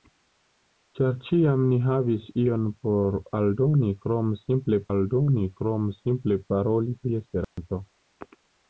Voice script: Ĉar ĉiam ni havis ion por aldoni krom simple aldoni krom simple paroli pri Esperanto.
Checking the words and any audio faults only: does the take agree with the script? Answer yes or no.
no